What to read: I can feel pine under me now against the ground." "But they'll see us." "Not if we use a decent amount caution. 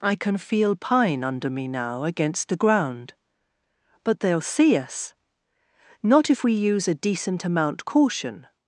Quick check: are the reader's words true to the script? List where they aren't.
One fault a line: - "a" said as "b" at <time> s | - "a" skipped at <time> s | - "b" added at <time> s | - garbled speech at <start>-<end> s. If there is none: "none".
none